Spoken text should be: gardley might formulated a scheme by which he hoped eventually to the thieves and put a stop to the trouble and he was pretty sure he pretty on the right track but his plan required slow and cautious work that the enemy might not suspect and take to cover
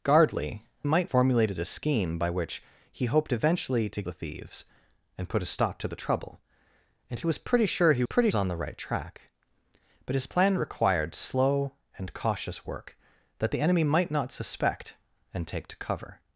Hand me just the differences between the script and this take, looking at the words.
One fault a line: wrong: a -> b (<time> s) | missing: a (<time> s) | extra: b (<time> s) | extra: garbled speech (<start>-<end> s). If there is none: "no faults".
no faults